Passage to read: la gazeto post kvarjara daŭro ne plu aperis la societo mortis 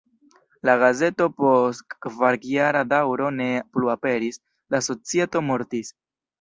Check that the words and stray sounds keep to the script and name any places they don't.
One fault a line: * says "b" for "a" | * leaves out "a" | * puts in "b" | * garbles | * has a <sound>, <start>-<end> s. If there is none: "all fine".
all fine